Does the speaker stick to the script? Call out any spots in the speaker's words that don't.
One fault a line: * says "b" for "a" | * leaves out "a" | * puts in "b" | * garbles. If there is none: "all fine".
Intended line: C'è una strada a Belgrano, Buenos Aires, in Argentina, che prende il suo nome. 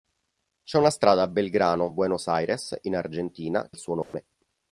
* leaves out "che prende"